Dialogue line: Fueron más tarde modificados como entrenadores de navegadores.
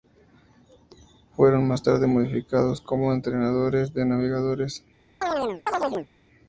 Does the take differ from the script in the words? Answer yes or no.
no